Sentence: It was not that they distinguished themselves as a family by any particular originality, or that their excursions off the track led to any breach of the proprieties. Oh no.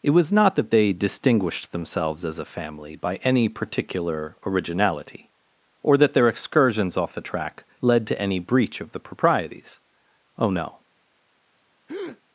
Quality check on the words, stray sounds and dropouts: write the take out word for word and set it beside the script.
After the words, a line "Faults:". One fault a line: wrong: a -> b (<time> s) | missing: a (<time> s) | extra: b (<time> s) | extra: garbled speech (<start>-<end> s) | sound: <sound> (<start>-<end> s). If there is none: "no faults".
It was not that they distinguished themselves as a family by any particular originality, or that their excursions off the track led to any breach of the proprieties. Oh no.
Faults:
sound: breath (11.9-12.2 s)